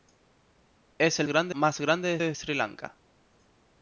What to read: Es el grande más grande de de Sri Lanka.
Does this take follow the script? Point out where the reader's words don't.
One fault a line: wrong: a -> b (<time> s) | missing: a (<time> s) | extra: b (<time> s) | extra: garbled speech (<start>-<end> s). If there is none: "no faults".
no faults